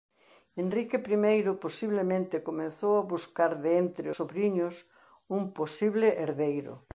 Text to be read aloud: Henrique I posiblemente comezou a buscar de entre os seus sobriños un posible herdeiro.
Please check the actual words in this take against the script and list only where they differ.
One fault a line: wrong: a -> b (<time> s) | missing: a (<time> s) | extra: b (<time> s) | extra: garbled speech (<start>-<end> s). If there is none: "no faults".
missing: os seus (4.1 s)